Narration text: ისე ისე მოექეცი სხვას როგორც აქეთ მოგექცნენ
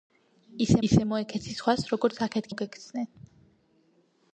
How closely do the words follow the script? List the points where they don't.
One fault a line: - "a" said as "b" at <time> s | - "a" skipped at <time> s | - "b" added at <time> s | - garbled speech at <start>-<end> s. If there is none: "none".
none